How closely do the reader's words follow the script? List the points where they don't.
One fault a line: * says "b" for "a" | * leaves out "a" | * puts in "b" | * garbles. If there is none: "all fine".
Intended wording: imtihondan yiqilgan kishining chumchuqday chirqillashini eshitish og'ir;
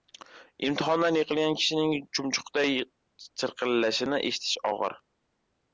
all fine